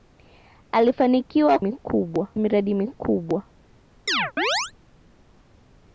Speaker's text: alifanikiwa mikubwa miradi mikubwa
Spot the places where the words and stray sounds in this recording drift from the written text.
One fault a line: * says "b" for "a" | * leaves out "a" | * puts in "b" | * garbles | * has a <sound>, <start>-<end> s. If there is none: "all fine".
* has a chirp, 4.1-4.7 s